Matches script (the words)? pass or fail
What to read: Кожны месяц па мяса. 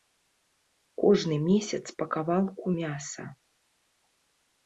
fail